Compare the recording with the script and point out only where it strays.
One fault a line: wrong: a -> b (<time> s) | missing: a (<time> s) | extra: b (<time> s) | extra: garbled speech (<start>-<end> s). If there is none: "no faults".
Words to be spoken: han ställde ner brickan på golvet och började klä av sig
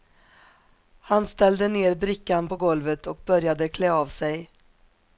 no faults